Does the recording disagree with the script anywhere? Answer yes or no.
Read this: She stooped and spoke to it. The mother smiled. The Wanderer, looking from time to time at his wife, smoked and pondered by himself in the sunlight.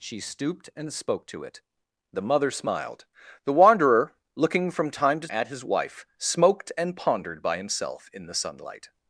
yes